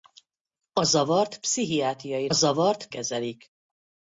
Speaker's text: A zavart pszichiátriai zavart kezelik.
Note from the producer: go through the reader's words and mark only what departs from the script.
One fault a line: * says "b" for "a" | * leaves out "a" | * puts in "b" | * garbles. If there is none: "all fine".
all fine